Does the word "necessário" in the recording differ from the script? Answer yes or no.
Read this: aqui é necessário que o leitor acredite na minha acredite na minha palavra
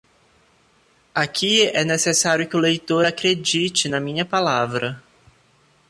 no